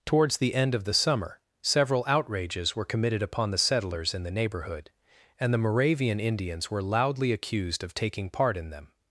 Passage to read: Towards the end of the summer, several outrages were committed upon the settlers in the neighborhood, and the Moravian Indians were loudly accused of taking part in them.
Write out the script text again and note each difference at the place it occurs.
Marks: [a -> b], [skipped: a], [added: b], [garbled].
Towards the end of the summer, several outrages were committed upon the settlers in the neighborhood, and the Moravian Indians were loudly accused of taking part in them.